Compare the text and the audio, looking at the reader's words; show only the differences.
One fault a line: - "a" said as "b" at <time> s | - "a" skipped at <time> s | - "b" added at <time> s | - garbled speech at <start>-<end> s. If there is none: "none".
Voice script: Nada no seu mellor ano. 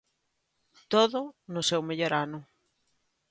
- "Nada" said as "Todo" at 0.9 s